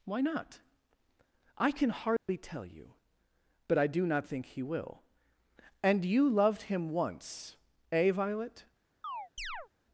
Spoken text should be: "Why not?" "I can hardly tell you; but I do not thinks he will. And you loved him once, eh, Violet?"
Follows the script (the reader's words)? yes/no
no